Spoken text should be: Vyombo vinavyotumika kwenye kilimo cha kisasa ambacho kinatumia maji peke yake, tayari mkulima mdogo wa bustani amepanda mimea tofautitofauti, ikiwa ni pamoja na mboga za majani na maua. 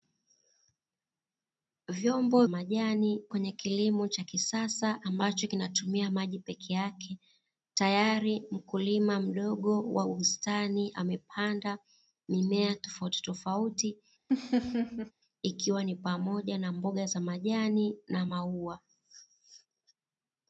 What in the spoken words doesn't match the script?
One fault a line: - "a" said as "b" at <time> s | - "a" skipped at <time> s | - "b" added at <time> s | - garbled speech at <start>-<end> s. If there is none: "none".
- "vinavyotumika" said as "majani" at 2.5 s